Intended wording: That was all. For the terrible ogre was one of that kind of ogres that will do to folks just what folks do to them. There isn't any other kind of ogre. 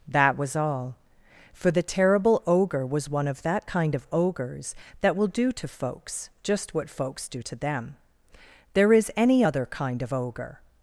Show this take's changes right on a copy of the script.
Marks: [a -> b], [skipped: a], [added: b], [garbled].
That was all. For the terrible ogre was one of that kind of ogres that will do to folks just what folks do to them. There [isn't -> is] any other kind of ogre.